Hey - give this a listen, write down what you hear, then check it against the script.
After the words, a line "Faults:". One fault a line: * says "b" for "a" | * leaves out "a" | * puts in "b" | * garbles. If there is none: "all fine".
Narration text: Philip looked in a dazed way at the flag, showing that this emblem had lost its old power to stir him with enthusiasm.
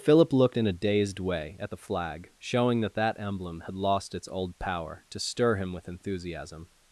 Philip looked in a dazed way at the flag, showing that that emblem had lost its old power to stir him with enthusiasm.
Faults:
* says "that" for "this"